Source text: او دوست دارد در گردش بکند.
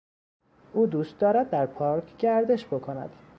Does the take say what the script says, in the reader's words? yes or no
no